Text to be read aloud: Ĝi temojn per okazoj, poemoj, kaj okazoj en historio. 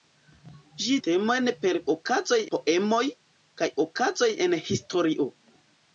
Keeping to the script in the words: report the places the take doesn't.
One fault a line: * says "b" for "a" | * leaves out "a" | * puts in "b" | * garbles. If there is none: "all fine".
all fine